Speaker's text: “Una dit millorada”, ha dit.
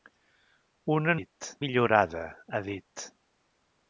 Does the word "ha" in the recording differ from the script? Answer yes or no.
no